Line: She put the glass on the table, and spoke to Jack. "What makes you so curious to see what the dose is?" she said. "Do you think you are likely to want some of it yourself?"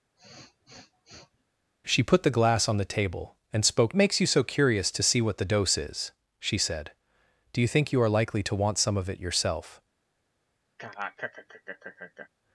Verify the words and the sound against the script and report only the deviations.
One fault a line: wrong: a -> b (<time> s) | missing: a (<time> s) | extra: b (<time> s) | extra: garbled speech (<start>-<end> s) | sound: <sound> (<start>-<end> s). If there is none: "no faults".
sound: sniff (0.2-1.4 s)
missing: to Jack What (3.9 s)
sound: laugh (10.8-12.3 s)